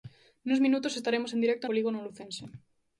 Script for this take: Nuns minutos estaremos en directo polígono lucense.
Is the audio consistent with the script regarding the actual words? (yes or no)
yes